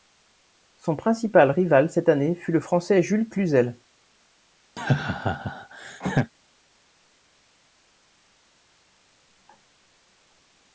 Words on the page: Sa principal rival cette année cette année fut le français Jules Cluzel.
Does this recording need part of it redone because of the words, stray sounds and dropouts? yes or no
yes